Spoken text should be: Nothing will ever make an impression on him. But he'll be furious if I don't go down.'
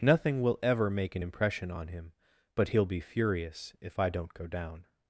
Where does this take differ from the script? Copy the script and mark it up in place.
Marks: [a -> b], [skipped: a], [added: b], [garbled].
Nothing will ever make an impression on him. But he'll be furious if I don't go down.'